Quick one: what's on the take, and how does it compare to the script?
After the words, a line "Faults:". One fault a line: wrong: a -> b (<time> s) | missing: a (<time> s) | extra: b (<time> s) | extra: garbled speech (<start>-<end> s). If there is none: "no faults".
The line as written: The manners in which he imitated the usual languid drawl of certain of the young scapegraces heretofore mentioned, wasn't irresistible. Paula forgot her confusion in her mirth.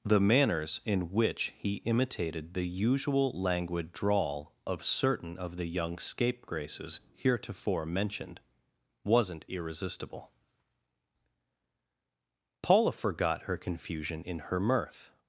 The manners in which he imitated the usual languid drawl of certain of the young scapegraces heretofore mentioned, wasn't irresistible. Paula forgot her confusion in her mirth.
Faults:
no faults